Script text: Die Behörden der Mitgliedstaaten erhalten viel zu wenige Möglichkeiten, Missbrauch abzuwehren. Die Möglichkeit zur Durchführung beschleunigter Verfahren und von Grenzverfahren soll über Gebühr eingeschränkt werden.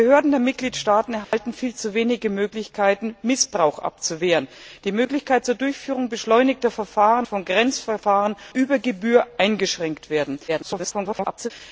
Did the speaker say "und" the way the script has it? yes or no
no